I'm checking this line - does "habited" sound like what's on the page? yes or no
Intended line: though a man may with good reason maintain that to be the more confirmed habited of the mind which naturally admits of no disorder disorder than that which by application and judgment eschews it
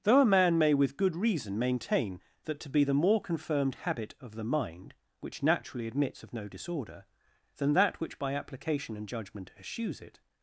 no